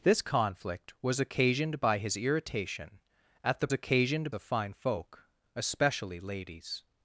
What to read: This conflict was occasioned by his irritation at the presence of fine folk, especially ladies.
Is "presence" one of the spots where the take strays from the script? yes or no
yes